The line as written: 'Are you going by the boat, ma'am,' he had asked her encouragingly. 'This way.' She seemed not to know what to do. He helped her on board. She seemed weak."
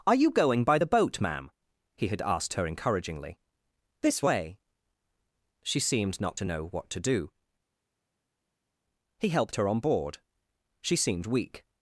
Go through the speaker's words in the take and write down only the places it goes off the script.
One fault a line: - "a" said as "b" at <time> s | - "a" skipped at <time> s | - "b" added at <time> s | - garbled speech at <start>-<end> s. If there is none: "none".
none